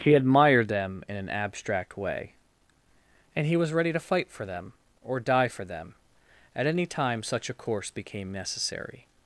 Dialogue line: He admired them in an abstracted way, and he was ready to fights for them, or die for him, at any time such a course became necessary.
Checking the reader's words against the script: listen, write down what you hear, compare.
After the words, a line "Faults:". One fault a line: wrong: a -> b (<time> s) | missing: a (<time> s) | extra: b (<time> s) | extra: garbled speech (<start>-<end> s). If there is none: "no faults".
He admired them in an abstract way, and he was ready to fight for them, or die for them, at any time such a course became necessary.
Faults:
wrong: abstracted -> abstract (1.3 s)
wrong: fights -> fight (4.0 s)
wrong: him -> them (5.6 s)